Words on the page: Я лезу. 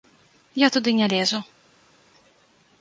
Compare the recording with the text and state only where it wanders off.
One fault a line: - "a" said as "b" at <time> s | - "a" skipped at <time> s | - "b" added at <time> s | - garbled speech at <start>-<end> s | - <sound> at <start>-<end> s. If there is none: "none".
- "туды не" added at 0.7 s